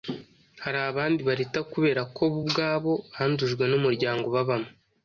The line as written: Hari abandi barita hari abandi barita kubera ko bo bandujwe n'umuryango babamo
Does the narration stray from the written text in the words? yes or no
yes